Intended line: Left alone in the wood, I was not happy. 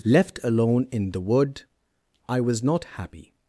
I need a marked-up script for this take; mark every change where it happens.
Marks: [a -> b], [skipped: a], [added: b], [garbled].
Left alone in the wood, I was not happy.